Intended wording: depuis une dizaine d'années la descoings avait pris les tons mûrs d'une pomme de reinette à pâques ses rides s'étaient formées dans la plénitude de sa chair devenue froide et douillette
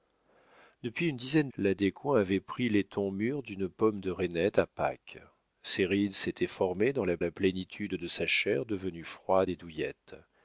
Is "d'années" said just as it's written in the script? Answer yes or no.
no